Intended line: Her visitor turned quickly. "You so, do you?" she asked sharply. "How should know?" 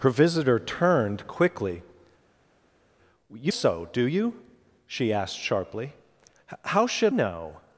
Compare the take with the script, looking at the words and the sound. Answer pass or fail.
pass